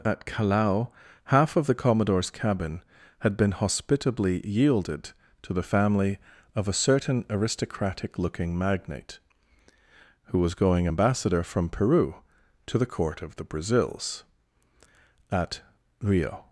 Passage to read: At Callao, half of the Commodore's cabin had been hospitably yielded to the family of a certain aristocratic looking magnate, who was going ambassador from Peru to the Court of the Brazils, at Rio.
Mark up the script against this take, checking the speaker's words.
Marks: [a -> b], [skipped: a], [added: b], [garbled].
At Callao, half of the Commodore's cabin had been hospitably yielded to the family of a certain aristocratic looking magnate, who was going ambassador from Peru to the Court of the Brazils, at Rio.